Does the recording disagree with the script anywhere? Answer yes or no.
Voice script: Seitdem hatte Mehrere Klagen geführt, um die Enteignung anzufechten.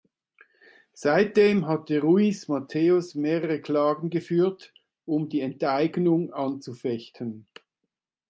yes